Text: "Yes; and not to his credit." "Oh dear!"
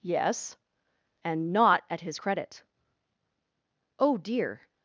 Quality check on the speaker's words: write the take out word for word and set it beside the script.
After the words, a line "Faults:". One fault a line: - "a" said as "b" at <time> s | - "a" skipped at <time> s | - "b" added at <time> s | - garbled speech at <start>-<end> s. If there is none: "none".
"Yes; and not at his credit." "Oh dear!"
Faults:
- "to" said as "at" at 1.9 s